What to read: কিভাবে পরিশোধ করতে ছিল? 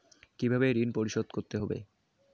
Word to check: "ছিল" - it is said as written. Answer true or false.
false